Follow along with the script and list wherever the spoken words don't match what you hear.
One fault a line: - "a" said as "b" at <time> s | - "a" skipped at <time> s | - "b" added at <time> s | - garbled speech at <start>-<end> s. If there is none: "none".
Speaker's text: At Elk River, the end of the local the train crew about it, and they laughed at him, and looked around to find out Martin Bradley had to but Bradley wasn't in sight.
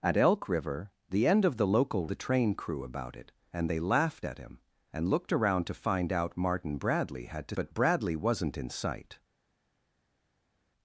none